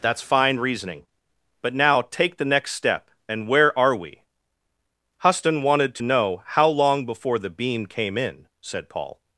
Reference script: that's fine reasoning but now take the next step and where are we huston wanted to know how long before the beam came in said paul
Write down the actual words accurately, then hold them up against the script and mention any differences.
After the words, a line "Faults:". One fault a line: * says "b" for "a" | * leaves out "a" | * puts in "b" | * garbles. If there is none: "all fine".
that's fine reasoning but now take the next step and where are we huston wanted to know how long before the beam came in said paul
Faults:
all fine